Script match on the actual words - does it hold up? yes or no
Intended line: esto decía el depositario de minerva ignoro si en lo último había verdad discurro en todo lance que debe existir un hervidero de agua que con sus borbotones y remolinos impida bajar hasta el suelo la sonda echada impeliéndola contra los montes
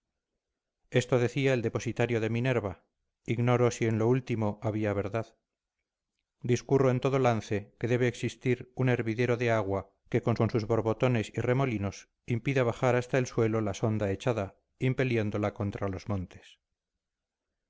no